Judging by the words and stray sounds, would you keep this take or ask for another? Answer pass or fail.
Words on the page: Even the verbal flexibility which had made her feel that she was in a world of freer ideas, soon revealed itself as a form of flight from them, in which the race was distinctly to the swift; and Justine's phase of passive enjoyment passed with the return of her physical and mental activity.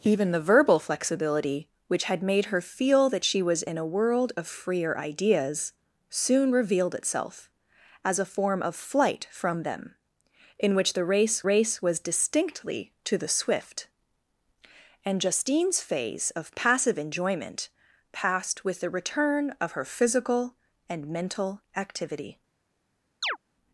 fail